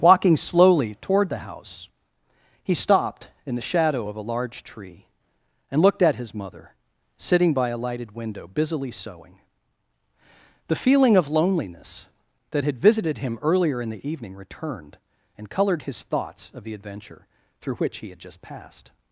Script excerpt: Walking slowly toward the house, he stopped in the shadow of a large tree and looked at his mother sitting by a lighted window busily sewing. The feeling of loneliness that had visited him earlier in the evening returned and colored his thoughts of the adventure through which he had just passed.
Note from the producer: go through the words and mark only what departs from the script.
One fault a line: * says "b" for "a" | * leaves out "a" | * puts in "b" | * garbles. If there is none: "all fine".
all fine